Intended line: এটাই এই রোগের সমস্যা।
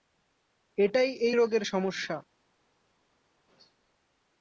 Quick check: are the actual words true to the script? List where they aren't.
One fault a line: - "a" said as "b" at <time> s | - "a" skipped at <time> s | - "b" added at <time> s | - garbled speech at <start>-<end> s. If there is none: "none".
none